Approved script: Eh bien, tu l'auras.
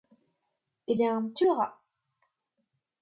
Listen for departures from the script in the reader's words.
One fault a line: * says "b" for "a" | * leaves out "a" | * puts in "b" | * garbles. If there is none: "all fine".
all fine